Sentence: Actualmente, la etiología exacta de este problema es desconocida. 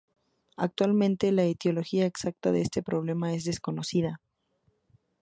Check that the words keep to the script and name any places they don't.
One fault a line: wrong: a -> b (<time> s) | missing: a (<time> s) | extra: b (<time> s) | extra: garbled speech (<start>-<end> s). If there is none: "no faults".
no faults